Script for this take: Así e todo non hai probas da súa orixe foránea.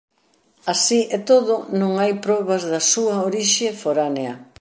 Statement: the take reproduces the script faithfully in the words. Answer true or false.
true